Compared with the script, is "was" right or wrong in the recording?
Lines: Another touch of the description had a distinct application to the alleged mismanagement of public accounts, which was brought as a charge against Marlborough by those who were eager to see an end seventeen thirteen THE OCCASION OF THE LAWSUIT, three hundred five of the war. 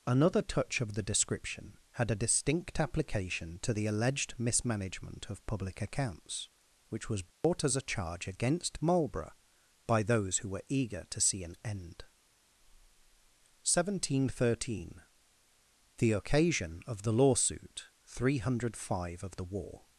right